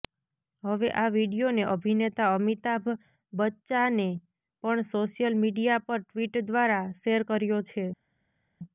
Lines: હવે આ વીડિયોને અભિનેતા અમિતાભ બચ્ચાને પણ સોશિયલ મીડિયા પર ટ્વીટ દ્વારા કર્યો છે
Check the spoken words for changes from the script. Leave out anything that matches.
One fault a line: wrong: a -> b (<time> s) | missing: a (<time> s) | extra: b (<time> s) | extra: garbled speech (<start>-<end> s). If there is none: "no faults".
extra: શેર (7.0 s)